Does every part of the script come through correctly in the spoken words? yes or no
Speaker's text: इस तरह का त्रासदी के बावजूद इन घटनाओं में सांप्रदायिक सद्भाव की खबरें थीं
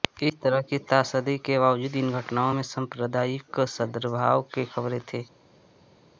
no